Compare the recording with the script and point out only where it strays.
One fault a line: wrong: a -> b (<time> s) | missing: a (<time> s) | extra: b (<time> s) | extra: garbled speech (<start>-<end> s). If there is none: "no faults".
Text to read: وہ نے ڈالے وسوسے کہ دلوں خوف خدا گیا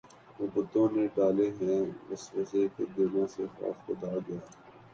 extra: بتوں (0.5 s)
extra: ہیں (1.6 s)
extra: سے (3.3 s)